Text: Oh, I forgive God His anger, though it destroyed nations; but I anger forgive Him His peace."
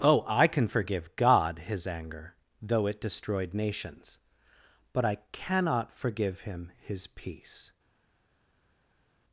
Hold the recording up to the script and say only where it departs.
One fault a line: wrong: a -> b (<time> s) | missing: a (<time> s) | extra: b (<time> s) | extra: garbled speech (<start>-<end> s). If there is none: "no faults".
extra: can (0.5 s)
wrong: anger -> cannot (5.3 s)